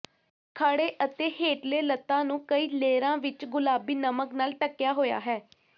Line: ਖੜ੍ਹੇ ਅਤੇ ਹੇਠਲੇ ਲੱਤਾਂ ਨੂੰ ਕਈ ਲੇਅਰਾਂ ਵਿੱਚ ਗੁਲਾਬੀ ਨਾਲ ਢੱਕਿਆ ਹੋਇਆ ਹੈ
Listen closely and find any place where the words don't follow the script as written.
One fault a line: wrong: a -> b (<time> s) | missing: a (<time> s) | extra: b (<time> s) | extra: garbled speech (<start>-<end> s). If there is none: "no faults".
extra: ਨਮਕ (4.0 s)